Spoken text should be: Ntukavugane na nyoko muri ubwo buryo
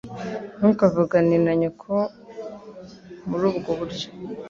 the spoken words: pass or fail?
pass